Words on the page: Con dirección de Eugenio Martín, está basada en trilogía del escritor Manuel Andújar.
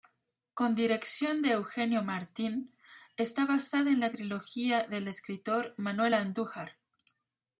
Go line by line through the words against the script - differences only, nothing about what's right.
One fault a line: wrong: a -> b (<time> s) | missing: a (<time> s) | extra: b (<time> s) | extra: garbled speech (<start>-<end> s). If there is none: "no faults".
extra: la (4.0 s)